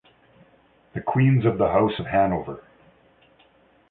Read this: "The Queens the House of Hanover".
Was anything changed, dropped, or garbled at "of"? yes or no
no